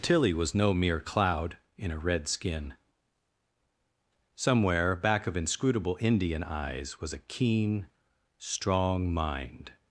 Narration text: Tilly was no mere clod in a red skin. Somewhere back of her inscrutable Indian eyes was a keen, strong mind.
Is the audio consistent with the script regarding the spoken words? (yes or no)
no